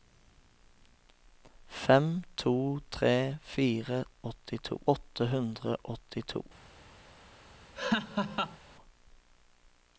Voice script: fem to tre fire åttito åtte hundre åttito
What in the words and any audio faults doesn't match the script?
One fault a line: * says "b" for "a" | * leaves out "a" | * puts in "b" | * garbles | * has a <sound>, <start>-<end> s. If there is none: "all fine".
* has a laugh, 7.7-8.6 s